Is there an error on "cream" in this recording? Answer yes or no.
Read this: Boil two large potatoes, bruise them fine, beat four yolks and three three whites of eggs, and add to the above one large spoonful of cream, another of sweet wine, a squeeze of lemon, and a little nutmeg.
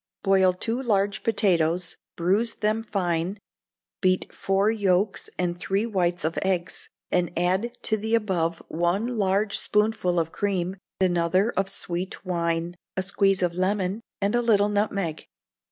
no